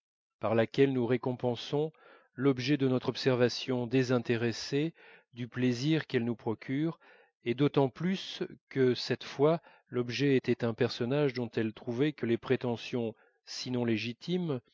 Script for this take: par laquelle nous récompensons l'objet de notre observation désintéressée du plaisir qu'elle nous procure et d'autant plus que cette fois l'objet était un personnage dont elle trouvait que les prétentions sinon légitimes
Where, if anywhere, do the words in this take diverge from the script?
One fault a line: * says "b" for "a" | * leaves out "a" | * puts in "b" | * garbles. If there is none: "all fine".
all fine